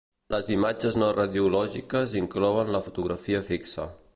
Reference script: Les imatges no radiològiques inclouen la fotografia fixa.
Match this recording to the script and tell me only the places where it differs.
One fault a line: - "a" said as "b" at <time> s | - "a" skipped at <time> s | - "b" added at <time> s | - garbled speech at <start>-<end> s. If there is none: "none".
none